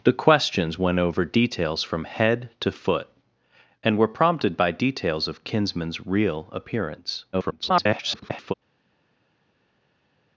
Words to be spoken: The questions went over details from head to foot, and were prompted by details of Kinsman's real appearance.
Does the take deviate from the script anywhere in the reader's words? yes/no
yes